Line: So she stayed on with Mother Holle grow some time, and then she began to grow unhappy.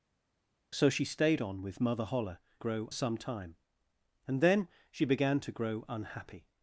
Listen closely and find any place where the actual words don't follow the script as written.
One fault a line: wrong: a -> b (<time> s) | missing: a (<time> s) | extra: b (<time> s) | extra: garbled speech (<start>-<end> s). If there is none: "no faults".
no faults